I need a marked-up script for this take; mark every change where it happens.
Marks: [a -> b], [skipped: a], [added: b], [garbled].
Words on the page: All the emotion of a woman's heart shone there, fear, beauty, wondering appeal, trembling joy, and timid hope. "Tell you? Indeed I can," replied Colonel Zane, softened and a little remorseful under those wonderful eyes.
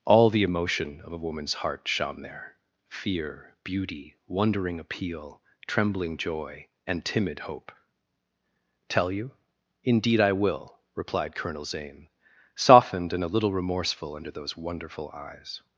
All the emotion of a woman's heart shone there, fear, beauty, wondering appeal, trembling joy, and timid hope. "Tell you? Indeed I [can," -> will] replied Colonel Zane, softened and a little remorseful under those wonderful eyes.